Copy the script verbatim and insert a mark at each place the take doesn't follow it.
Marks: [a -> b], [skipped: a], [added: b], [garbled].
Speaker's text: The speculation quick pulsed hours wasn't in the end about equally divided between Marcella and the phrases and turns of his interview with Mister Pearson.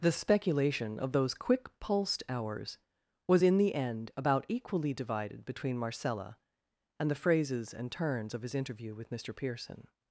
The speculation [added: of those] quick pulsed hours [wasn't -> was] in the end about equally divided between Marcella and the phrases and turns of his interview with Mister Pearson.